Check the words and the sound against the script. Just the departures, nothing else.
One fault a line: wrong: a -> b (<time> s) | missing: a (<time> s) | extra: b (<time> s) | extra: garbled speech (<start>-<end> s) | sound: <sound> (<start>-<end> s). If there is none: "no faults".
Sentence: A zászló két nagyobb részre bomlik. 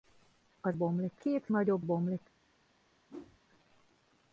wrong: zászló -> bomlik (0.7 s)
missing: részre (1.8 s)
sound: whoosh (3.1-3.4 s)